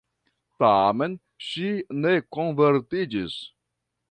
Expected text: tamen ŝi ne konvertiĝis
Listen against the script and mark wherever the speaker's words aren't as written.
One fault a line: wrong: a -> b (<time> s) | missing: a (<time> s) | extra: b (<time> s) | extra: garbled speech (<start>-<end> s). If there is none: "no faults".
no faults